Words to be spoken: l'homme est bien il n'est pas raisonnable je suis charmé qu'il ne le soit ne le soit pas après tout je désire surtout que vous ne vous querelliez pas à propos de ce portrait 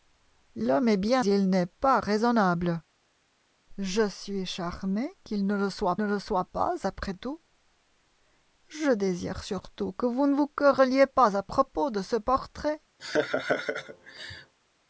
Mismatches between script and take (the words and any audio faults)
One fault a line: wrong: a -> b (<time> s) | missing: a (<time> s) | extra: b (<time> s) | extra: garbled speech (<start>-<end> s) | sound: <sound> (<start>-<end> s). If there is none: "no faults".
sound: laugh (13.0-14.5 s)